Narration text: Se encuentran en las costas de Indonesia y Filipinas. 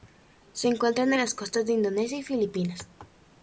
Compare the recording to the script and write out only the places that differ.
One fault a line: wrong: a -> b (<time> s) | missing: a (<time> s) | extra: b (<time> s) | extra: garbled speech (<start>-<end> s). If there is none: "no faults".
no faults